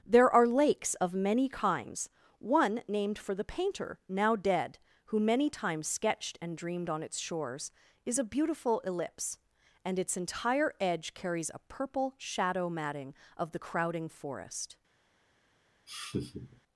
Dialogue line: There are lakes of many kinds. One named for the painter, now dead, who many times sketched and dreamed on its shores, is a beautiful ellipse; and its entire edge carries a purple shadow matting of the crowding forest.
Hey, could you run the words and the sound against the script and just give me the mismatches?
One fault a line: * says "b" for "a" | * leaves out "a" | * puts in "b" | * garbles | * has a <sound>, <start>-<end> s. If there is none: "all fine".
* has a laugh, 15.9-16.6 s